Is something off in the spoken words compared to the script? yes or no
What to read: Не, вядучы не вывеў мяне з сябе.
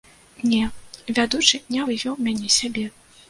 no